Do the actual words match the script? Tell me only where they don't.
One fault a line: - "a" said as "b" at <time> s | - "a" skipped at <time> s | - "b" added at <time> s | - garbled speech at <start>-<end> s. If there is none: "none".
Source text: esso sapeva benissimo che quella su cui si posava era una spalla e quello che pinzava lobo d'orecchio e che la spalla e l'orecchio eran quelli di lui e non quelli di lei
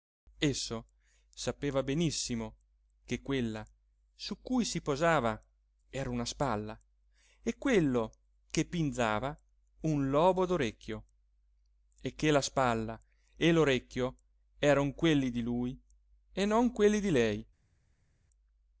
- "un" added at 9.8 s